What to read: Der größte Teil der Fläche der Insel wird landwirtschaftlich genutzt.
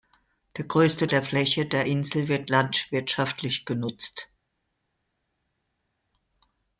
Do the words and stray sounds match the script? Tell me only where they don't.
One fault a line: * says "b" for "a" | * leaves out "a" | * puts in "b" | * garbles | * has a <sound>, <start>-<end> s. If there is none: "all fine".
* leaves out "Teil"